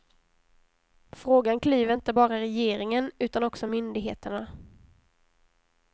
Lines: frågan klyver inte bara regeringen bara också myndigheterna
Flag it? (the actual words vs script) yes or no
yes